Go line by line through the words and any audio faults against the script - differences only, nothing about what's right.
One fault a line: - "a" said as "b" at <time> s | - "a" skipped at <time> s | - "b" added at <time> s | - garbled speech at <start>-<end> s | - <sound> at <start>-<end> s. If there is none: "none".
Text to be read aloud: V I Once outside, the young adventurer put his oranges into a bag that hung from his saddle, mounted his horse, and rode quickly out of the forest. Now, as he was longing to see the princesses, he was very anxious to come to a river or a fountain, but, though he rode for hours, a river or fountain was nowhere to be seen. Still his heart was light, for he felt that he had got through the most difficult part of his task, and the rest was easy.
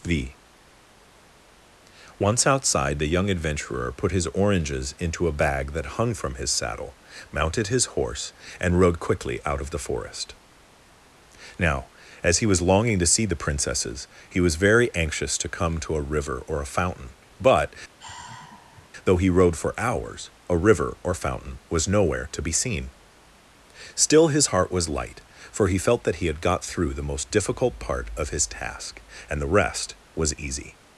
- "I" skipped at 0.3 s
- sigh at 18.0-18.9 s